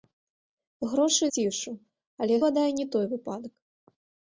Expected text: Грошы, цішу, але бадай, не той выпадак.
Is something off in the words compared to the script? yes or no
no